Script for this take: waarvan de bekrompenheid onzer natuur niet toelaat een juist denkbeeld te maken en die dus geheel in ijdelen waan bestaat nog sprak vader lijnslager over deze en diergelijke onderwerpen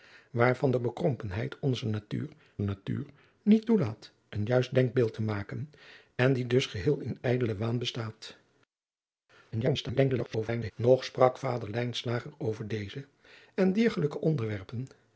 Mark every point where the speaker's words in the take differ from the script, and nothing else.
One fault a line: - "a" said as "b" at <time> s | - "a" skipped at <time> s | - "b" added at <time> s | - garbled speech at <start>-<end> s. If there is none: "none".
- "natuur" added at 2.6 s
- garbled speech at 9.5-10.7 s